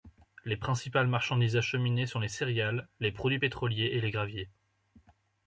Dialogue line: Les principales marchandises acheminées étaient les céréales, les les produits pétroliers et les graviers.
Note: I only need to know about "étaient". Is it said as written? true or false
false